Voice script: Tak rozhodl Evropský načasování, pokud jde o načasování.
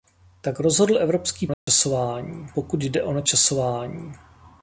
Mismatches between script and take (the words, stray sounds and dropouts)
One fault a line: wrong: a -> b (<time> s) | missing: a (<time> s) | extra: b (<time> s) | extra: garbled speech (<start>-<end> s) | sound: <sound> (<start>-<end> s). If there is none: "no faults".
sound: dropout (1.5-1.7 s)